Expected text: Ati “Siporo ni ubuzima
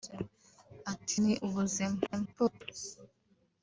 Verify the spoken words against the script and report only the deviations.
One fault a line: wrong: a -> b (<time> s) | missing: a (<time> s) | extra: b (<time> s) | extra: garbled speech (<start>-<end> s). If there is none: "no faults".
missing: Siporo (1.1 s)
extra: garbled speech (2.1-2.6 s)